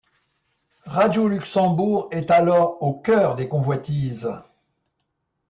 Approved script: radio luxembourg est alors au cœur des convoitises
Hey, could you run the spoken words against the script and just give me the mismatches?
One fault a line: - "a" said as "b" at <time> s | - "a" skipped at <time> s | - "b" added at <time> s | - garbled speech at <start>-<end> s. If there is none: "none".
none